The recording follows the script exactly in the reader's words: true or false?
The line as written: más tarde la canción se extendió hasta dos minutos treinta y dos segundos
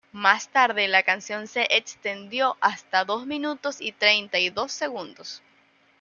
false